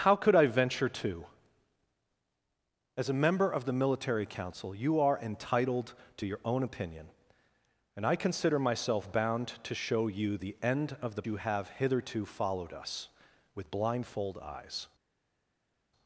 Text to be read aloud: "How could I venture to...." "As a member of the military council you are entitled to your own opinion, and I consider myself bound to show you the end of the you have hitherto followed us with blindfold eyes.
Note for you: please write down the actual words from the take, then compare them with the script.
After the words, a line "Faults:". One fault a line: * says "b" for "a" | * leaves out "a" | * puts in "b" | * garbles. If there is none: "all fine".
"How could I venture to...." "As a member of the military council you are entitled to your own opinion, and I consider myself bound to show you the end of the you have hitherto followed us with blindfold eyes.
Faults:
all fine